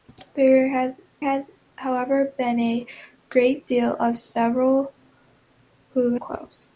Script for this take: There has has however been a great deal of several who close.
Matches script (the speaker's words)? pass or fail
pass